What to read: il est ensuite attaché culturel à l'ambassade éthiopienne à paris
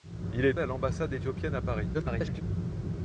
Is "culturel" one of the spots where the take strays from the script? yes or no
yes